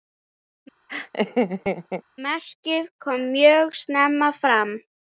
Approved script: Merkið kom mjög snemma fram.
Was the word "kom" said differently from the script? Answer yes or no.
no